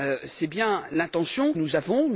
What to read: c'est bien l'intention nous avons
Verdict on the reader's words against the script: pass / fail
pass